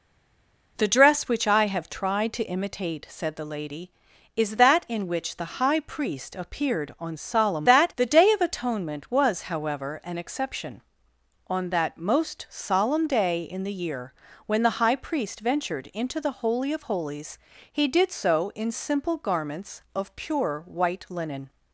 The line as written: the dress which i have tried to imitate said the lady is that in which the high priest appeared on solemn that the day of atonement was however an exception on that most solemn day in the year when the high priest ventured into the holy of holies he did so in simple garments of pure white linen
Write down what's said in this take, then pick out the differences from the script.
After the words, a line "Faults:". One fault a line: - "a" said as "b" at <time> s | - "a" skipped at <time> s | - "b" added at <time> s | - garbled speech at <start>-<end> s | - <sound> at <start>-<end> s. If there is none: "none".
the dress which i have tried to imitate said the lady is that in which the high priest appeared on solemn that the day of atonement was however an exception on that most solemn day in the year when the high priest ventured into the holy of holies he did so in simple garments of pure white linen
Faults:
none